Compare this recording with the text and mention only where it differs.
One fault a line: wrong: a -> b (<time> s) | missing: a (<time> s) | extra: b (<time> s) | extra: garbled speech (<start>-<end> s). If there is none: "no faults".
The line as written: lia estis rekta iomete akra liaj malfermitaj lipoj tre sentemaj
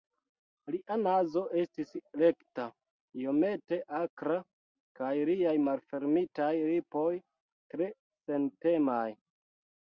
extra: nazo (1.0 s)
extra: kaj (5.0 s)